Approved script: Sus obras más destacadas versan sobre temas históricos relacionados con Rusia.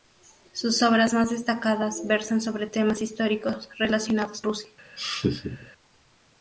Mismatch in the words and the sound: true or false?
true